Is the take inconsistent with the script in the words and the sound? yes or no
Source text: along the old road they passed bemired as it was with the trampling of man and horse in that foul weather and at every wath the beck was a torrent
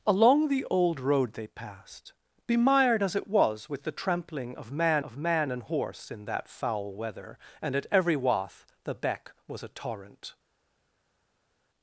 yes